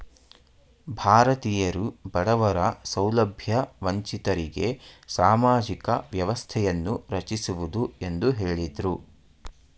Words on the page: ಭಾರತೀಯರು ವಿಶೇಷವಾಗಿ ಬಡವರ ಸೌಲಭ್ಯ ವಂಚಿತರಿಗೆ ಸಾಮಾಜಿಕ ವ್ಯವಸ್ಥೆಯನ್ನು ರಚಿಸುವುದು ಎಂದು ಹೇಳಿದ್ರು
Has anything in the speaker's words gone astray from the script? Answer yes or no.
yes